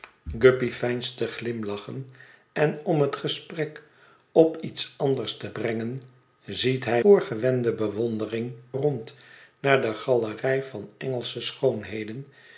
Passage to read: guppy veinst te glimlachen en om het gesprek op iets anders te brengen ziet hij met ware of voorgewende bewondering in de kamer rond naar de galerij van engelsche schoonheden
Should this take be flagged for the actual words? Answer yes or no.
yes